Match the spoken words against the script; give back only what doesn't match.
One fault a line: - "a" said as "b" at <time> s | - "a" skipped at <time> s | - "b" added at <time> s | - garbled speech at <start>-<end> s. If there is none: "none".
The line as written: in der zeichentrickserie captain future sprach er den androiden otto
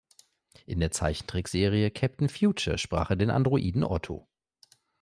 none